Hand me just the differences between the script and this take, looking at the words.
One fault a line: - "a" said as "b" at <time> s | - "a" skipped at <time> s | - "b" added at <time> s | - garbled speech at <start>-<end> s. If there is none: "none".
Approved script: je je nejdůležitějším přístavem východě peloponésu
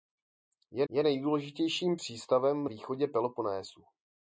none